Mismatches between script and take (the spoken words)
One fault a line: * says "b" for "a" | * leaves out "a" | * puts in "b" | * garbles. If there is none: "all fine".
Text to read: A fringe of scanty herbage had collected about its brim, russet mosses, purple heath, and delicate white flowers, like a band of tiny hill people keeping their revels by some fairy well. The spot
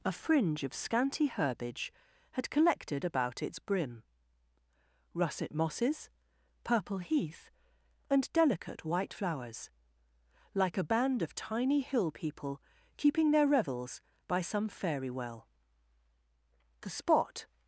all fine